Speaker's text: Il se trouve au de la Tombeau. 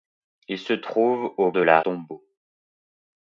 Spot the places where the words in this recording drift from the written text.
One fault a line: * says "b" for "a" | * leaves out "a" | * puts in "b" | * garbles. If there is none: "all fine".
all fine